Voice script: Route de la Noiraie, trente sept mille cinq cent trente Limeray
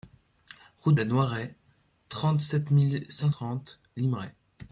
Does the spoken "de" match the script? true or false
false